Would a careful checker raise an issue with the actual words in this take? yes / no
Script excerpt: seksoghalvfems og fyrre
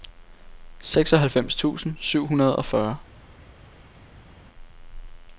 yes